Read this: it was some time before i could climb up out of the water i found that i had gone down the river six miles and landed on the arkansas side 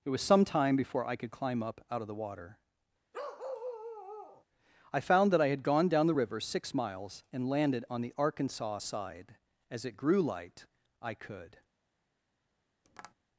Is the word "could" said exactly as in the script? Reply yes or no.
yes